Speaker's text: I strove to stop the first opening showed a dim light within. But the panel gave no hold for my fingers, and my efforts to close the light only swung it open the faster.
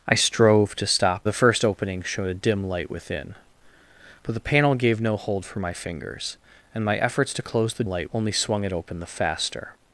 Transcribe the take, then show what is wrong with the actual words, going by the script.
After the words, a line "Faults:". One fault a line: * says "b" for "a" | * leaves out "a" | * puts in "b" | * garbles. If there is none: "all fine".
I strove to stop the first opening showed a dim light within. But the panel gave no hold for my fingers, and my efforts to close the light only swung it open the faster.
Faults:
all fine